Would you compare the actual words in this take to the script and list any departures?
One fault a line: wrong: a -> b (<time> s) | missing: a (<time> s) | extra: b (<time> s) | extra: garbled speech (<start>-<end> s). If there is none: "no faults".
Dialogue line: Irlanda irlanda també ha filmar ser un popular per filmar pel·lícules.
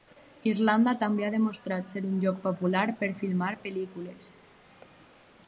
missing: irlanda (0.9 s)
wrong: filmar -> demostrat (1.4 s)
extra: lloc (2.2 s)